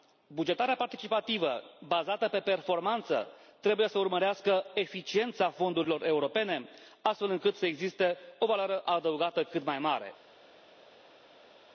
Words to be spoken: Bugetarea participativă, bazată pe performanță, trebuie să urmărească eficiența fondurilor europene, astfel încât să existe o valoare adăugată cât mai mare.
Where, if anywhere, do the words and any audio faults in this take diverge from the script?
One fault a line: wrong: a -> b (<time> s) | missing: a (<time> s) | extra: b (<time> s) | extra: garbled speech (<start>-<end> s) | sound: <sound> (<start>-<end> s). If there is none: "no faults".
no faults